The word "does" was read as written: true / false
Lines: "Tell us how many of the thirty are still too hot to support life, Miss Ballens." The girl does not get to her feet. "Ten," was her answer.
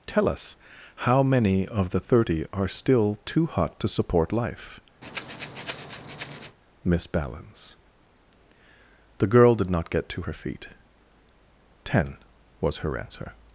false